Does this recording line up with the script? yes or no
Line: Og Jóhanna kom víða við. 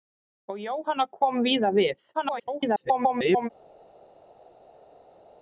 no